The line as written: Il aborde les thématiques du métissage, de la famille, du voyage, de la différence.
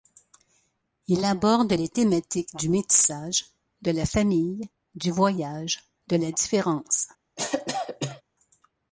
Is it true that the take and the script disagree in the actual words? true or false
false